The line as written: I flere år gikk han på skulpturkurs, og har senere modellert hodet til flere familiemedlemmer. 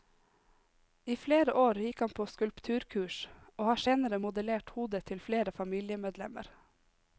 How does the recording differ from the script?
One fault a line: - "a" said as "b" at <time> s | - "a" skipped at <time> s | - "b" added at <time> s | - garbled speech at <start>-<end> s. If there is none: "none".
none